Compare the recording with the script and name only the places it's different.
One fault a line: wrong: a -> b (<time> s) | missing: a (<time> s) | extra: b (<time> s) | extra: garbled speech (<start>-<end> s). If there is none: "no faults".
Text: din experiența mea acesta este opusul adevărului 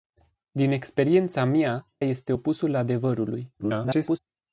missing: acesta (1.9 s)
extra: garbled speech (3.6-4.2 s)